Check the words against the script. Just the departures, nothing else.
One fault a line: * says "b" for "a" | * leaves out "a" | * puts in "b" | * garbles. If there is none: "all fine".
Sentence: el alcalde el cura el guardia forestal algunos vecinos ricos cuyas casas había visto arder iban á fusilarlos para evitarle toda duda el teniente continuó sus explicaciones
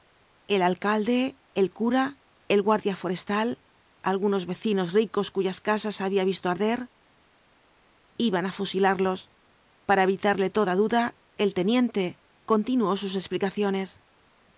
all fine